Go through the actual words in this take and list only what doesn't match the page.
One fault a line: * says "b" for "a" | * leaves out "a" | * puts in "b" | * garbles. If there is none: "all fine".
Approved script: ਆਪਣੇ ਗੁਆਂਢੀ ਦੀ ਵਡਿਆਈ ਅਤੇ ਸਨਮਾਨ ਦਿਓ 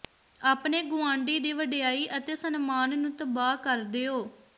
* puts in "ਨੂੰ ਤਬਾਹ ਕਰ"